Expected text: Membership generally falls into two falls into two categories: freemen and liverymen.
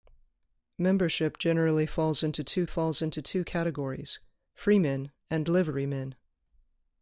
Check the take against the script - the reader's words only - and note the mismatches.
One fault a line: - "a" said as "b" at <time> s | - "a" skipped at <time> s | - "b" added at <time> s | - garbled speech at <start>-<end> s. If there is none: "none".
none